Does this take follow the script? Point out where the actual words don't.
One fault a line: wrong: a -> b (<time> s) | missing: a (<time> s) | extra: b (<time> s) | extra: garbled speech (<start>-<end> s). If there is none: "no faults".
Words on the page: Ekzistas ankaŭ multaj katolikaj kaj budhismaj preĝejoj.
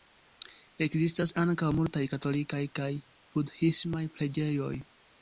no faults